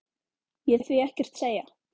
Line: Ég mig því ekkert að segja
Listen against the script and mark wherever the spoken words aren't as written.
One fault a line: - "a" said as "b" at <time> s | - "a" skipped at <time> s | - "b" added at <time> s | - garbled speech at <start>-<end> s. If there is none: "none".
none